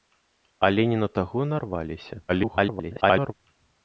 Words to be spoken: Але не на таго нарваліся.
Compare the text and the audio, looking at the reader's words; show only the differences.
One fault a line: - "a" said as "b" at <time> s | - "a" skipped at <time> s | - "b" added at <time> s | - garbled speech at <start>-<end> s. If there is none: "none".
- garbled speech at 2.3-3.3 s